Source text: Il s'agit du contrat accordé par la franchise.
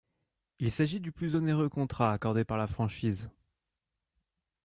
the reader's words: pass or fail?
fail